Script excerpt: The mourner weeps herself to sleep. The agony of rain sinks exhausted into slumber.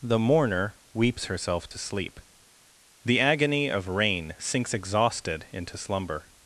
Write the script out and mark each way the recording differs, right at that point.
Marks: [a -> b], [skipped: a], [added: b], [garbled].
The mourner weeps herself to sleep. The agony of rain sinks exhausted into slumber.